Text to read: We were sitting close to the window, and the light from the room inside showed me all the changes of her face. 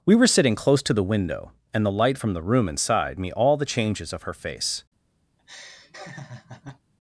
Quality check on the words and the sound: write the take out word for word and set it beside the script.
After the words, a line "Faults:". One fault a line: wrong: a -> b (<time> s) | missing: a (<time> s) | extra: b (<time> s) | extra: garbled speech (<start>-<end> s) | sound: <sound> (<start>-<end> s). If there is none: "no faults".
We were sitting close to the window, and the light from the room inside me all the changes of her face.
Faults:
missing: showed (3.2 s)
sound: laugh (5.4-6.8 s)